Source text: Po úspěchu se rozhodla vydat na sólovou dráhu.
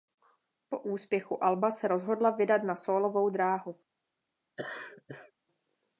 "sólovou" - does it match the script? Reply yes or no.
yes